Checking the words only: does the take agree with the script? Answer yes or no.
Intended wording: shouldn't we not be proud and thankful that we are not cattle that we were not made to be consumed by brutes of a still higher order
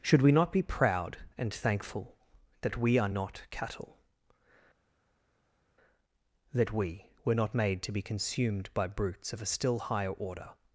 no